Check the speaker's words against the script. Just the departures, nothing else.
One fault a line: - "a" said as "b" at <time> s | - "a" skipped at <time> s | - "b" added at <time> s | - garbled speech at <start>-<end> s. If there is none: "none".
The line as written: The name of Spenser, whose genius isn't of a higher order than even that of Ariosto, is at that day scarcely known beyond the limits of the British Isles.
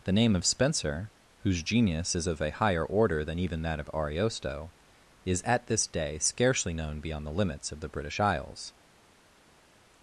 - "isn't" said as "is" at 2.2 s
- "that" said as "this" at 5.7 s